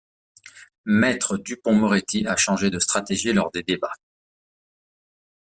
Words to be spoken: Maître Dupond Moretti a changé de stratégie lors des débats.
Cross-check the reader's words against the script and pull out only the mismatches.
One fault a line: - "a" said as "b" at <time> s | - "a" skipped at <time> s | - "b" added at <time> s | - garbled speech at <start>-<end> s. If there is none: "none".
none